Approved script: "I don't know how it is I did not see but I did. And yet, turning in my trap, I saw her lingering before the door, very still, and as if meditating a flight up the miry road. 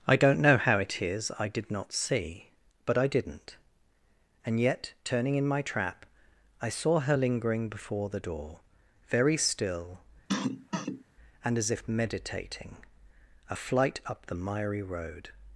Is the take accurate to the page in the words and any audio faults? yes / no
no